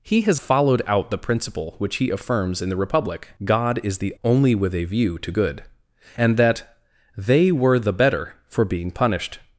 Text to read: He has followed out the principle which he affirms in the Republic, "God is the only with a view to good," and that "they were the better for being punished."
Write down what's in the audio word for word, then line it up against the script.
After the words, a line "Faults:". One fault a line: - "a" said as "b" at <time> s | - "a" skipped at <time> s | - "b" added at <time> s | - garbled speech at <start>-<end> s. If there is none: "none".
He has followed out the principle which he affirms in the Republic, "God is the only with a view to good," and that "they were the better for being punished."
Faults:
none